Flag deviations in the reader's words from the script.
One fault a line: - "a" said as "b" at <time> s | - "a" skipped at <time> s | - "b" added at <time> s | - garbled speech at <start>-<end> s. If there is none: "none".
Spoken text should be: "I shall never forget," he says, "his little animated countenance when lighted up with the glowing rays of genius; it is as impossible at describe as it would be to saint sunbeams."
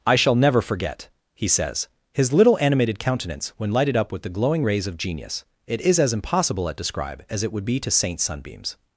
none